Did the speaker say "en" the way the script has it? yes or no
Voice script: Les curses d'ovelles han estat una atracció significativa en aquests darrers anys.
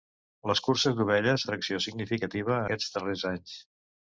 no